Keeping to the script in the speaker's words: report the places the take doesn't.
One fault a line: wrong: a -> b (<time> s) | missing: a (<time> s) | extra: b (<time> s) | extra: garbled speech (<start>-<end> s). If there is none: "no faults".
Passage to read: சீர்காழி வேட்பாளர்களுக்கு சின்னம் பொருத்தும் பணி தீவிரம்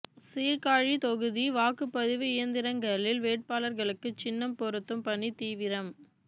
extra: தொகுதி வாக்குப்பதிவு இயந்திரங்களில் (1.0 s)